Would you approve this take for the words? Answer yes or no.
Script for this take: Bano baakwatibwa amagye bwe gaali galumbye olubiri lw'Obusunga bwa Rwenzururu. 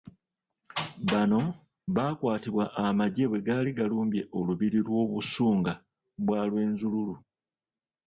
yes